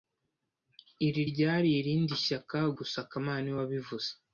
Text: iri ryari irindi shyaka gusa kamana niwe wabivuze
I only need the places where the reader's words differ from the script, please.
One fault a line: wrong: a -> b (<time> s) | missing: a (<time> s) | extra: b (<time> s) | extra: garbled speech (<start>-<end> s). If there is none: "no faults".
no faults